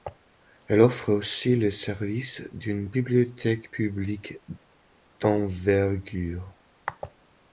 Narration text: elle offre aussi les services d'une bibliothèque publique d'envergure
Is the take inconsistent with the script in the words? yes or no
no